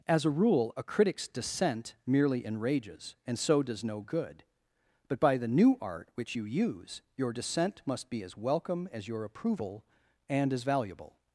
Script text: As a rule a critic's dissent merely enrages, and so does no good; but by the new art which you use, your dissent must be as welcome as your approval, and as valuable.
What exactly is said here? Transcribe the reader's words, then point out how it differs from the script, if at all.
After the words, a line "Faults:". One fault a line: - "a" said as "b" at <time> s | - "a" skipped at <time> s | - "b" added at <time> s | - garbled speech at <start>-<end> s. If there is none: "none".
As a rule a critic's dissent merely enrages, and so does no good; but by the new art which you use, your dissent must be as welcome as your approval, and as valuable.
Faults:
none